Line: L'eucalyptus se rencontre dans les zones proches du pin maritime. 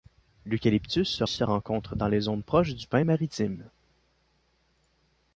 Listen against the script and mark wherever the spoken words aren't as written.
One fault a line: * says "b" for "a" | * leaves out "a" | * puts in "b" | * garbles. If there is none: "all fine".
* puts in "se"